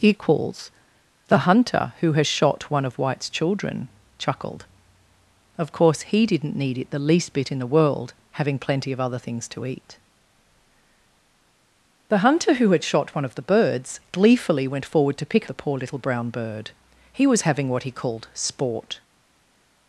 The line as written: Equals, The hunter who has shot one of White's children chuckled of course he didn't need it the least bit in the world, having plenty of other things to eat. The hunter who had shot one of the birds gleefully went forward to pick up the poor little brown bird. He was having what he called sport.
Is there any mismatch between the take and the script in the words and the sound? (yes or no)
yes